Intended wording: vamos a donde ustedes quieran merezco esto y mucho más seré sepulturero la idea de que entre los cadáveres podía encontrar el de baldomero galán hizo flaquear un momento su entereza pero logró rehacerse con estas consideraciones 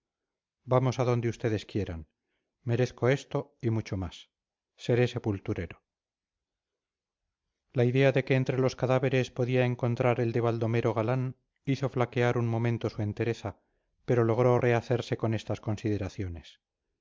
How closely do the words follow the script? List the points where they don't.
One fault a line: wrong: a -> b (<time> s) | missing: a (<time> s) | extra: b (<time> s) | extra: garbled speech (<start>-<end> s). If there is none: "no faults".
no faults